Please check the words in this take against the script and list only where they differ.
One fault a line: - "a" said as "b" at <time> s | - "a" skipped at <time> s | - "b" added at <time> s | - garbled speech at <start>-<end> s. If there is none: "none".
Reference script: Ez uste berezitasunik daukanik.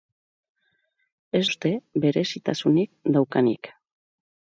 none